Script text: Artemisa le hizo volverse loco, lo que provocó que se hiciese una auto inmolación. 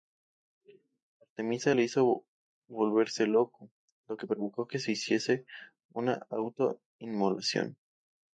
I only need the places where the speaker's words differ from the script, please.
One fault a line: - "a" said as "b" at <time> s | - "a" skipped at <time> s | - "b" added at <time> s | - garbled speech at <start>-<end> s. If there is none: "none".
none